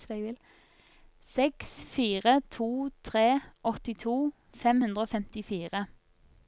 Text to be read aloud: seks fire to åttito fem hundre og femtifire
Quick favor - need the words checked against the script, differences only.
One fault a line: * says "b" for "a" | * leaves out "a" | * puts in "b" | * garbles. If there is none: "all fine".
* puts in "tre"